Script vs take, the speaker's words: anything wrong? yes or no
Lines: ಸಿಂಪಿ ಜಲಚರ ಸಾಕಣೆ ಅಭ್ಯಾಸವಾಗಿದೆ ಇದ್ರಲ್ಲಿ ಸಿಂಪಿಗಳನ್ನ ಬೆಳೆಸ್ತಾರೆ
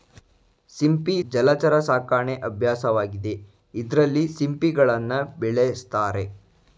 no